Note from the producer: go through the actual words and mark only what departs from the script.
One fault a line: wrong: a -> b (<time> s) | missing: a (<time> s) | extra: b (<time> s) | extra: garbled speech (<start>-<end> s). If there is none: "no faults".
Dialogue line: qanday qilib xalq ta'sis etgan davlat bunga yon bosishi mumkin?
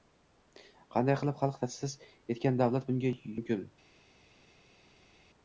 missing: yon bosishi (3.1 s)